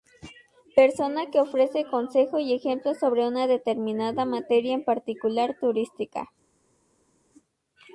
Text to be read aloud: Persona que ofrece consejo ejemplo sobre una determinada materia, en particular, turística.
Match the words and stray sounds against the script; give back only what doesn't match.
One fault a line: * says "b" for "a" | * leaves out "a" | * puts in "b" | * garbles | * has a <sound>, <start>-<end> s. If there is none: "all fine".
* puts in "y"